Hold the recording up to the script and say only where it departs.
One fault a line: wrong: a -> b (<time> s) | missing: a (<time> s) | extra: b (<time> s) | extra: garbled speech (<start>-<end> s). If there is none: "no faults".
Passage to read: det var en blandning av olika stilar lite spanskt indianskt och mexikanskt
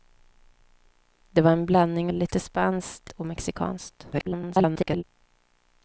missing: av olika stilar (2.1 s)
missing: indianskt (3.1 s)
extra: garbled speech (4.1-5.0 s)